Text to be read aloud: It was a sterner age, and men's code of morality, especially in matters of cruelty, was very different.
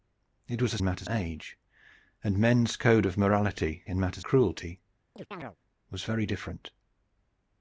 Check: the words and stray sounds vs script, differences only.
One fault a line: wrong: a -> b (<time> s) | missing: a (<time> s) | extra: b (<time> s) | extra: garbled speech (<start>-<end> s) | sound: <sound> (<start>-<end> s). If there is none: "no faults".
wrong: sterner -> matters (0.8 s)
missing: especially (3.8 s)
missing: of (4.2 s)
sound: chirp (5.2-5.6 s)